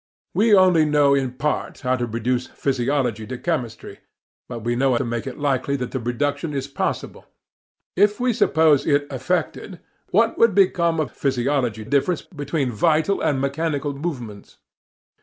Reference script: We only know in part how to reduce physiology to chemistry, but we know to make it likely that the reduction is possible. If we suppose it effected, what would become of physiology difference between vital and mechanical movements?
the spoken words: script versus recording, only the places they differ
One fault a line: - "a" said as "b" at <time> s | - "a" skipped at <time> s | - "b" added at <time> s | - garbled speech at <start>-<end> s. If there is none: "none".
none